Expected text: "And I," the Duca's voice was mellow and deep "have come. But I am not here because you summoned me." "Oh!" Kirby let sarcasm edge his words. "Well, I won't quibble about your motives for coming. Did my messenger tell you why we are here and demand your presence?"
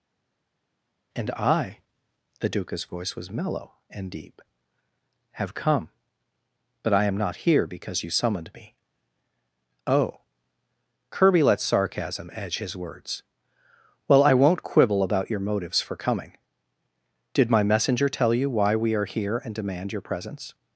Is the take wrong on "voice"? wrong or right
right